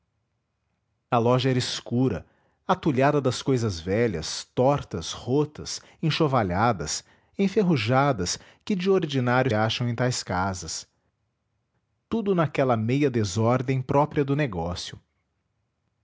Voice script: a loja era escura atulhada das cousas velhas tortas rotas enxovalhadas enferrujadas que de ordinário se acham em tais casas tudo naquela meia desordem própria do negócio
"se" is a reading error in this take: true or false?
true